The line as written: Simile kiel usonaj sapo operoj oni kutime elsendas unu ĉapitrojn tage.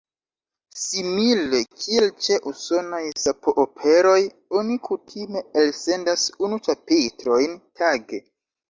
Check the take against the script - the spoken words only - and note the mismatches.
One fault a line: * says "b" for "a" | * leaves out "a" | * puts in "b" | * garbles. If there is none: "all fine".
* puts in "ĉe"